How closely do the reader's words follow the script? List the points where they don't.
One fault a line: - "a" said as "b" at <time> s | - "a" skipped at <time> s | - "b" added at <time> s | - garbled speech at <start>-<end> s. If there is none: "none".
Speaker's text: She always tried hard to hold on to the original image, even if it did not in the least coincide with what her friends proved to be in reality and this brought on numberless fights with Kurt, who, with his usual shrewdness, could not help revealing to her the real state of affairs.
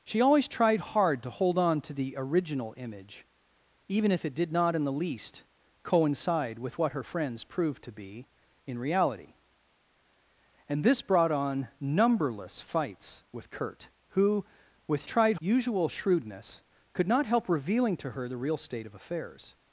- "his" said as "tried" at 15.0 s